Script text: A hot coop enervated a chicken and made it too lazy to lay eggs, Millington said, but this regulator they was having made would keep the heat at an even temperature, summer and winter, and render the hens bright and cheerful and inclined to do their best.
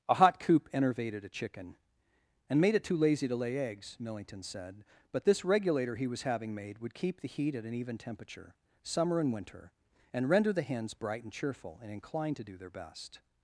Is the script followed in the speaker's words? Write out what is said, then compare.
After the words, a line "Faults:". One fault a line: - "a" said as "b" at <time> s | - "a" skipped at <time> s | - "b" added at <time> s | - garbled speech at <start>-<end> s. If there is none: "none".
A hot coop enervated a chicken and made it too lazy to lay eggs, Millington said, but this regulator he was having made would keep the heat at an even temperature, summer and winter, and render the hens bright and cheerful and inclined to do their best.
Faults:
- "they" said as "he" at 6.0 s